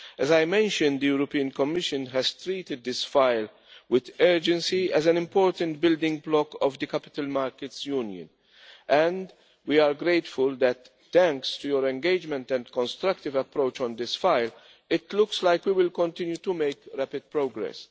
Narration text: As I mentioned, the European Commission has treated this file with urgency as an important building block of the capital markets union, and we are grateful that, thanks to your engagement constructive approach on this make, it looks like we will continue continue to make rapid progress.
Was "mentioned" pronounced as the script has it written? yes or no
yes